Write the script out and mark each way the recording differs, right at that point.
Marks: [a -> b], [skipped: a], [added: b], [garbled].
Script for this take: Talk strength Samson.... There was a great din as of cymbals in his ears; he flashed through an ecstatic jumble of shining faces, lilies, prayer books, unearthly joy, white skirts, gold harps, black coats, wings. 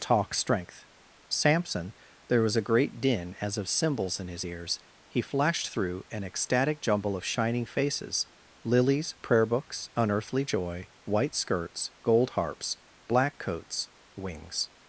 Talk strength Samson.... There was a great din as of cymbals in his ears; he flashed through an ecstatic jumble of shining faces, lilies, prayer books, unearthly joy, white skirts, gold harps, black coats, wings.